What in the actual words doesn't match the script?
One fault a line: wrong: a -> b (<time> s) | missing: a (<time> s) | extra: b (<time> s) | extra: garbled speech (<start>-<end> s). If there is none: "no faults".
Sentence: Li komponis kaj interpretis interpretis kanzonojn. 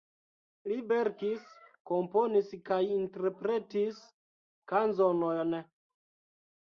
extra: verkis (0.9 s)
missing: interpretis (4.0 s)